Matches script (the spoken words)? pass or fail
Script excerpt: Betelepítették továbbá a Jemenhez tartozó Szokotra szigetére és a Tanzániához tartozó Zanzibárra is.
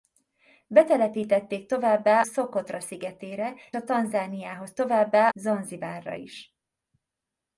fail